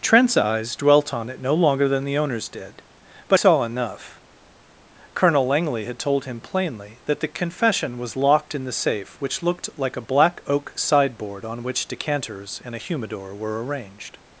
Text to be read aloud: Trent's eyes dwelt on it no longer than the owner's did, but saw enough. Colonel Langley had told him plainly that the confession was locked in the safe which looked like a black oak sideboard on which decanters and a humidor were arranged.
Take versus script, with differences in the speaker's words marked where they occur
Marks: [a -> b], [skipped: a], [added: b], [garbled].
Trent's eyes dwelt on it no longer than the owner's did, but saw enough. Colonel Langley had told him plainly that the confession was locked in the safe which looked like a black oak sideboard on which decanters and a humidor were arranged.